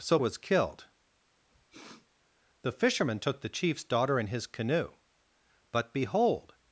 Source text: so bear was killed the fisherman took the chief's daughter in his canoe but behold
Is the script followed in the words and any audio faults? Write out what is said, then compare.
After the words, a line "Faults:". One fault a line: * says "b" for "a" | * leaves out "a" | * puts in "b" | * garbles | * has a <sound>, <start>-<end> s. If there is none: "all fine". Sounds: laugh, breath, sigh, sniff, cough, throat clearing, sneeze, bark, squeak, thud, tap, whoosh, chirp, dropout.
so was killed the fisherman took the chief's daughter in his canoe but behold
Faults:
* leaves out "bear"
* has a sniff, 1.5-2.1 s